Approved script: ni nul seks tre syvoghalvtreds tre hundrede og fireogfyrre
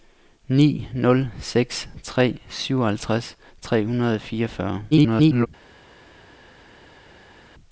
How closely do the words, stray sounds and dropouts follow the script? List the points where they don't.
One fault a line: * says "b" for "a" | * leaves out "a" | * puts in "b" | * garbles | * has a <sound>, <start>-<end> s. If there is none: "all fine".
* garbles